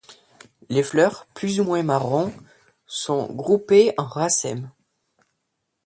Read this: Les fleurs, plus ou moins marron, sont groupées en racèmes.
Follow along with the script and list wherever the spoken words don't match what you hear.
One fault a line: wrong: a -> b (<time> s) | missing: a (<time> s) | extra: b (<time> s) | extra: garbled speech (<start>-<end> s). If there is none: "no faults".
no faults